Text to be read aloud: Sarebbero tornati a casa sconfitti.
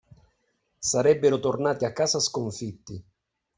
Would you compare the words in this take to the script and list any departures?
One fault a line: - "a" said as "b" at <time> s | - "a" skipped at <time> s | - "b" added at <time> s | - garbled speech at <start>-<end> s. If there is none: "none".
none